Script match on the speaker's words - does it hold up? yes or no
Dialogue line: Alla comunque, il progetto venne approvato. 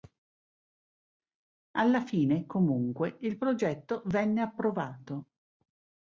no